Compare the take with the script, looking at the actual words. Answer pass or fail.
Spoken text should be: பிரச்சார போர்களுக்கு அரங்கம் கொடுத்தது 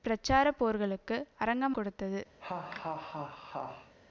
pass